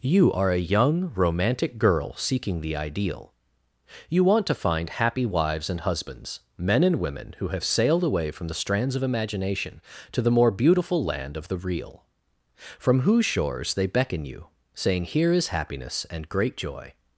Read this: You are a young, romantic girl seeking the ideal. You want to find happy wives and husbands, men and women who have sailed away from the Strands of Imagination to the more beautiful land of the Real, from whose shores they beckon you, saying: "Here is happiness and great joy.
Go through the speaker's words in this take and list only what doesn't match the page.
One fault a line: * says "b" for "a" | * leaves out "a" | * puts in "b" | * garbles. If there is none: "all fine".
all fine